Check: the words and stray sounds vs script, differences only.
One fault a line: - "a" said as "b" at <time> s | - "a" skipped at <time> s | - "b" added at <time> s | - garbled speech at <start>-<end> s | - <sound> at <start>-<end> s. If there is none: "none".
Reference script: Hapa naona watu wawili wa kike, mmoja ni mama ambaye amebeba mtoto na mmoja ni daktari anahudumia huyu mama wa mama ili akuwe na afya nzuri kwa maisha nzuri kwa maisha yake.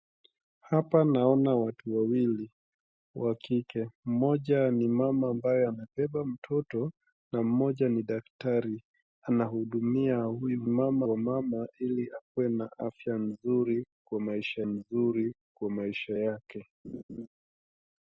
- laugh at 16.8-17.3 s